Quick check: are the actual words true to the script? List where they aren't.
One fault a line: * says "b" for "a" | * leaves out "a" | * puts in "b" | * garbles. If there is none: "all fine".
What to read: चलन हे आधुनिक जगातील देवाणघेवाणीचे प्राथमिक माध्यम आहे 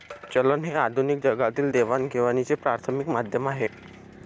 all fine